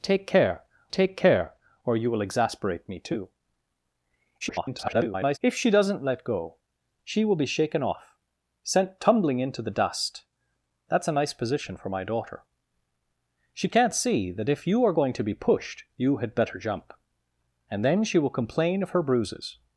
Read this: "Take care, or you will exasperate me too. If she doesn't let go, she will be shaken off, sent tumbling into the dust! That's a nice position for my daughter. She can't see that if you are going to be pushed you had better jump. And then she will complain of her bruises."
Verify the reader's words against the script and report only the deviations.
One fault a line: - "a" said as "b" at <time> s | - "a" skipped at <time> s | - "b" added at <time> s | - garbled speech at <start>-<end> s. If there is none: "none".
- "take care" added at 0.9 s
- garbled speech at 4.4-5.4 s